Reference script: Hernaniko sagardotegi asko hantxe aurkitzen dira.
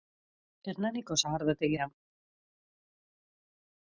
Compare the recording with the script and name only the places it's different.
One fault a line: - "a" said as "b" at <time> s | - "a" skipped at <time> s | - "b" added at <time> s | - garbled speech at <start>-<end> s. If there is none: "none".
- "asko hantxe aurkitzen" skipped at 1.8 s